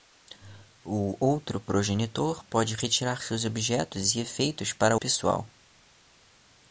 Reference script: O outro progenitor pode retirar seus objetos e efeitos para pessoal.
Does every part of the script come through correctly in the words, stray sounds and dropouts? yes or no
yes